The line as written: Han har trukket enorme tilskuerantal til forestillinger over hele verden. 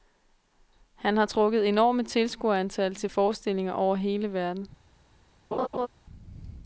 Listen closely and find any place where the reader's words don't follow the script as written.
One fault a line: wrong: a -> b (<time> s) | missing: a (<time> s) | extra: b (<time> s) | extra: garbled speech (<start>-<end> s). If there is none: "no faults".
no faults